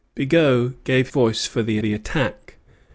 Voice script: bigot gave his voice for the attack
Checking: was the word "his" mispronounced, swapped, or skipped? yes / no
yes